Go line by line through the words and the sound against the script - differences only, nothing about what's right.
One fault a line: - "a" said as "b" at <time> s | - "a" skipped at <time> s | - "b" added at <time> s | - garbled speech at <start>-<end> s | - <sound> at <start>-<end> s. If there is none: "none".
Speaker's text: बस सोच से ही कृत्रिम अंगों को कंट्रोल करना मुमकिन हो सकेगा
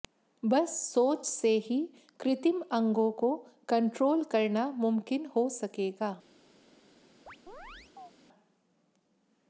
- chirp at 7.3-8.1 s